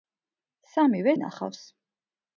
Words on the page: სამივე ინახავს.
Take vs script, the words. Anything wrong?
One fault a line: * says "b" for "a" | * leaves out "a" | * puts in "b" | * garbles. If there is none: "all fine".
all fine